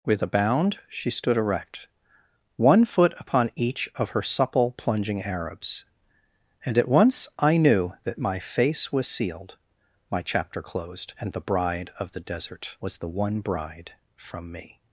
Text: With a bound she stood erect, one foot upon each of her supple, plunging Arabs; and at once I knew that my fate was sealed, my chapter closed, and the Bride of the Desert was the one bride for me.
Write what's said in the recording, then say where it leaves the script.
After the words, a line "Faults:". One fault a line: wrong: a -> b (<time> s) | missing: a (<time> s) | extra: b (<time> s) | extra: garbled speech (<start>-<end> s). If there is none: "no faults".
With a bound she stood erect, one foot upon each of her supple, plunging Arabs; and at once I knew that my face was sealed, my chapter closed, and the Bride of the Desert was the one bride from me.
Faults:
wrong: fate -> face (8.4 s)
wrong: for -> from (14.1 s)